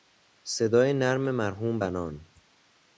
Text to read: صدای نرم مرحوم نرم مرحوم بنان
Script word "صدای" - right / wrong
right